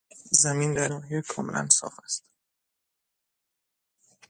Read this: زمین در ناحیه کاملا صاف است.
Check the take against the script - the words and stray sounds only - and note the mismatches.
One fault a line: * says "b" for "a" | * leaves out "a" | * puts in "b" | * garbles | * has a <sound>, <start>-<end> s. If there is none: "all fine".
all fine